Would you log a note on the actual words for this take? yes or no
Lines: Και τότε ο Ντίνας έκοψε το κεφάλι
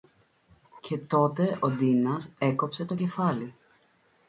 no